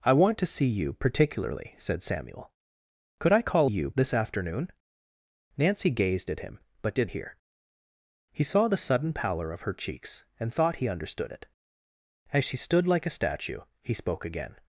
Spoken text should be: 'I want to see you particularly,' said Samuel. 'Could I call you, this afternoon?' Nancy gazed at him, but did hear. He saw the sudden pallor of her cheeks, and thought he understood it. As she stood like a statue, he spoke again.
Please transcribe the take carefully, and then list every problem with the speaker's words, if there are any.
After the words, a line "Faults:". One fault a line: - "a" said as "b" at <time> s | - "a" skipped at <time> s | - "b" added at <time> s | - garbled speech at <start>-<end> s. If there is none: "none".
'I want to see you particularly,' said Samuel. 'Could I call you, this afternoon?' Nancy gazed at him, but did hear. He saw the sudden pallor of her cheeks, and thought he understood it. As she stood like a statue, he spoke again.
Faults:
none